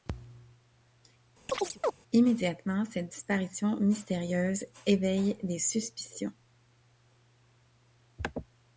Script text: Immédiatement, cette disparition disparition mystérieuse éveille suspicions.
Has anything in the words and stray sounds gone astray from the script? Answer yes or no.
yes